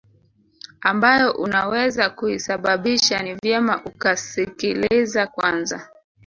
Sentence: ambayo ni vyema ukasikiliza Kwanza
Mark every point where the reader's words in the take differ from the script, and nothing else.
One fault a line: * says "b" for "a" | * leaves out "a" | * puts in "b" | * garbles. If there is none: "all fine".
* puts in "unaweza kuisababisha"